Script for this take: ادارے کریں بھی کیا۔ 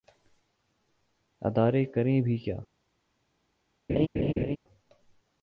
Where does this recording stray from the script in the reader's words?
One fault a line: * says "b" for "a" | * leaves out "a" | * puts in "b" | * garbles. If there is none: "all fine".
all fine